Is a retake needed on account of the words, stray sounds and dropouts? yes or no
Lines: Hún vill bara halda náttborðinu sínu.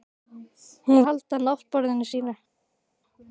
yes